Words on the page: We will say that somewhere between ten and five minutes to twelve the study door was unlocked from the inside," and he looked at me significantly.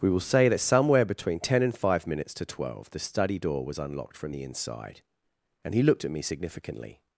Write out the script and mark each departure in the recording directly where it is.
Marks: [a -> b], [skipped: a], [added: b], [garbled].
We will say that somewhere between ten and five minutes to twelve the study door was unlocked from the inside," and he looked at me significantly.